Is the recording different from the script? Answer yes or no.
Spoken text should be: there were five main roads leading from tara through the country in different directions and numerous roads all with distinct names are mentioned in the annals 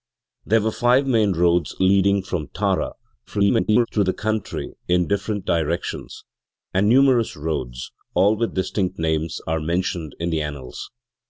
yes